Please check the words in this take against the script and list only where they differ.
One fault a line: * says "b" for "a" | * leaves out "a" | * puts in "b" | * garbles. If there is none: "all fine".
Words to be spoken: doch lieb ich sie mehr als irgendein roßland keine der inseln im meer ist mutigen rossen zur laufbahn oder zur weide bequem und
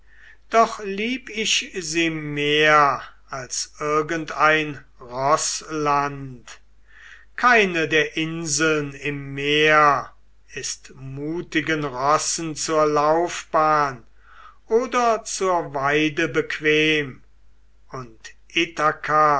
all fine